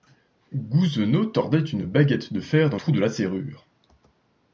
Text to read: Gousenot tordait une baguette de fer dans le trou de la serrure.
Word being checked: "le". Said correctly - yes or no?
no